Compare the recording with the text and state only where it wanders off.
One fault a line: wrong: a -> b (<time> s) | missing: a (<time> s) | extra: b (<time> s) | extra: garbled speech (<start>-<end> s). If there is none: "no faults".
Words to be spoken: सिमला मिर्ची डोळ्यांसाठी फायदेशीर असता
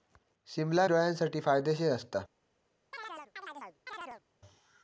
missing: मिर्ची (0.9 s)